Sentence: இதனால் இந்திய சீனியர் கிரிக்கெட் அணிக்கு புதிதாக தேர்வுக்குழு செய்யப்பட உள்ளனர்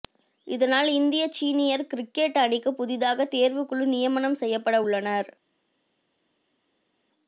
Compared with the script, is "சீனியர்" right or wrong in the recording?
right